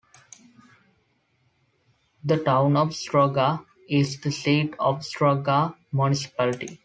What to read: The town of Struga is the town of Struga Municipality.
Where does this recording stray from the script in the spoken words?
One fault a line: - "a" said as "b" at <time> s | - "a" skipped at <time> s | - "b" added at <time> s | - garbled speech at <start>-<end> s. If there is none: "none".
- "town" said as "seat" at 4.3 s